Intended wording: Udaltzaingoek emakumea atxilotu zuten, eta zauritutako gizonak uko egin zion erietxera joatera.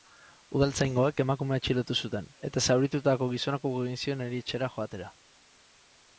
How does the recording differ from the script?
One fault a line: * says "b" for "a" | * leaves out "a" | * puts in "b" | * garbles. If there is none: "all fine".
all fine